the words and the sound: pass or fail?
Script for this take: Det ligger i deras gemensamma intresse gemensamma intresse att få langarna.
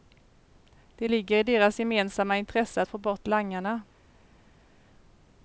fail